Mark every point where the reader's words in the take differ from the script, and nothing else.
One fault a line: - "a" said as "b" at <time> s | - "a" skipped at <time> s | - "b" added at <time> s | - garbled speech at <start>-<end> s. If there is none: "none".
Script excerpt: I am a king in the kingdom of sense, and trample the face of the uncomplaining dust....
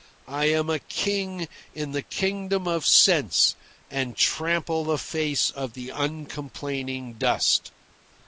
none